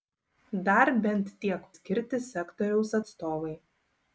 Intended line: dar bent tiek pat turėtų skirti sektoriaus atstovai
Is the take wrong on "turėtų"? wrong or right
wrong